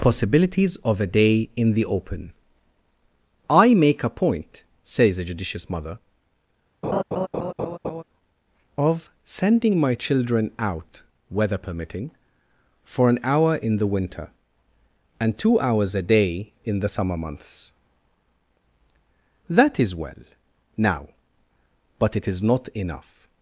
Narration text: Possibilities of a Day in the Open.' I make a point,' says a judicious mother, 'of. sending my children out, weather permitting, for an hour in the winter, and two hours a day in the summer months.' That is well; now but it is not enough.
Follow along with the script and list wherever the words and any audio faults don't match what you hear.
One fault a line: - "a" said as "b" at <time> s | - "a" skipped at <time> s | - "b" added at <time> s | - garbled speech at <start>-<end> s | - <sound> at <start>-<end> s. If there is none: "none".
- laugh at 6.8-8.0 s